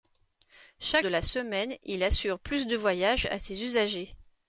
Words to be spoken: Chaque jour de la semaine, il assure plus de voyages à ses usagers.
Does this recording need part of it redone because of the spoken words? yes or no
yes